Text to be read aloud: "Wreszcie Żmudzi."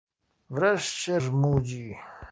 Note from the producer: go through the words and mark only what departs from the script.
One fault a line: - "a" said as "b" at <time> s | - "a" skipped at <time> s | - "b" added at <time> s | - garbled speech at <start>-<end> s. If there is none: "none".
none